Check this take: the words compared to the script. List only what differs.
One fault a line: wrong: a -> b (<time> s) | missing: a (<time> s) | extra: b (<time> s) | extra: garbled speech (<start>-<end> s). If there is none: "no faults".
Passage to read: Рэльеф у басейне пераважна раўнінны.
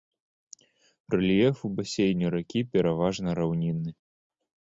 extra: ракі (2.4 s)